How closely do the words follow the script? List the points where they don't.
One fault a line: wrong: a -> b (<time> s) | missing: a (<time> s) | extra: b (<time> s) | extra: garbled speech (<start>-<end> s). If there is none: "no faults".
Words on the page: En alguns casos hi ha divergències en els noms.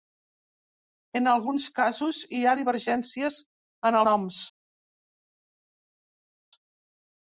missing: els (4.0 s)